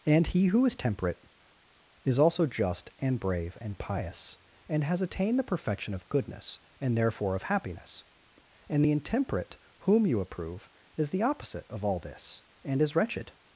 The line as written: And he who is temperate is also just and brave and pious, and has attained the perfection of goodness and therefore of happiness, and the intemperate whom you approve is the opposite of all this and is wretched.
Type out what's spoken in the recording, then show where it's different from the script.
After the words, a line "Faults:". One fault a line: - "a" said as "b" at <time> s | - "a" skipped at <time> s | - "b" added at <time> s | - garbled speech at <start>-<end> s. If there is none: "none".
And he who is temperate is also just and brave and pious, and has attained the perfection of goodness and therefore of happiness, and the intemperate whom you approve is the opposite of all this and is wretched.
Faults:
none